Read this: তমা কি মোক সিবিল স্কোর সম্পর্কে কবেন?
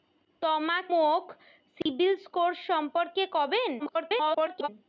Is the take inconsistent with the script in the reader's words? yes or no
yes